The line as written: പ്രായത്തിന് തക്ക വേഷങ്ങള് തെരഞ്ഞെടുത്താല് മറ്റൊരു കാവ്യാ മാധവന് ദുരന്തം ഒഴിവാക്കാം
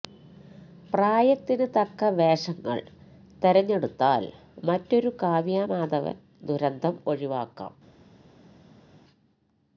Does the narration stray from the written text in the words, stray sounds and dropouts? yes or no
no